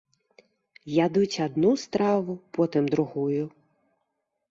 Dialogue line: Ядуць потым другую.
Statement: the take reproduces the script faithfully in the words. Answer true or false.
false